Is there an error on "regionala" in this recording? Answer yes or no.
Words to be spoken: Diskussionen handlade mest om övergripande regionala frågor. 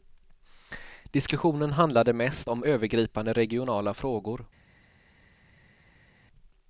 no